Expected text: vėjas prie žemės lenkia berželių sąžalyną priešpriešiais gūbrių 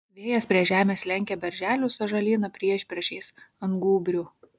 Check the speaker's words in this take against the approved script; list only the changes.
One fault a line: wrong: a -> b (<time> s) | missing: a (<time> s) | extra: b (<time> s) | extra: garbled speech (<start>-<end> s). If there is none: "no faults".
extra: ant (3.7 s)